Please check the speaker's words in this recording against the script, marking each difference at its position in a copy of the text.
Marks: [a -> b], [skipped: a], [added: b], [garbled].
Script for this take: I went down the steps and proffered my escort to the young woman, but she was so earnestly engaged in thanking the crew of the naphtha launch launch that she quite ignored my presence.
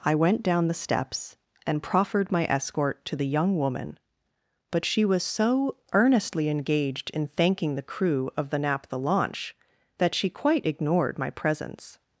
I went down the steps and proffered my escort to the young woman, but she was so earnestly engaged in thanking the crew of the naphtha launch [skipped: launch] that she quite ignored my presence.